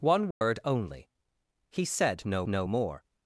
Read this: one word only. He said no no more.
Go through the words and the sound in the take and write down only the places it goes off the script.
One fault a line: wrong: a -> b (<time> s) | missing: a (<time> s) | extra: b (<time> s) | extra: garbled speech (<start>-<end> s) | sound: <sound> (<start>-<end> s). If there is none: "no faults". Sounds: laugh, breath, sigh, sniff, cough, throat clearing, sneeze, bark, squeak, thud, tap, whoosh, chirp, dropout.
sound: dropout (0.3-0.4 s)